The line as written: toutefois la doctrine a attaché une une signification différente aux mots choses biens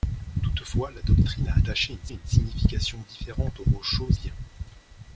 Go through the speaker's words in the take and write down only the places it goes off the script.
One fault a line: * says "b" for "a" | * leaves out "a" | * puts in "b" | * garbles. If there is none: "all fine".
all fine